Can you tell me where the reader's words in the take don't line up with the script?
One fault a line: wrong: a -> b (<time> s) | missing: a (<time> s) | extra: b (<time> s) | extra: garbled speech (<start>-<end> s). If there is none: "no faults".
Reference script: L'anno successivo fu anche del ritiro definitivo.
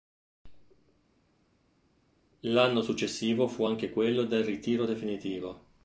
extra: quello (3.9 s)